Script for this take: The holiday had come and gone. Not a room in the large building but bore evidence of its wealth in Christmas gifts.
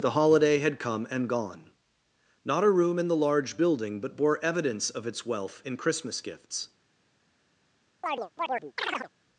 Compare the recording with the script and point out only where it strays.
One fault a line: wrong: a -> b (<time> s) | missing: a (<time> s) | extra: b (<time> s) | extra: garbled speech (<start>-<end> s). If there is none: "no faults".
no faults